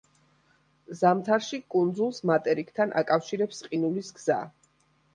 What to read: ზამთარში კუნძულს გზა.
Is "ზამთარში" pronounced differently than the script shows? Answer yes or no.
no